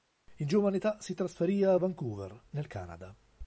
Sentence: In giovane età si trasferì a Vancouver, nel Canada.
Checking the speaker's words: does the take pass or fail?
pass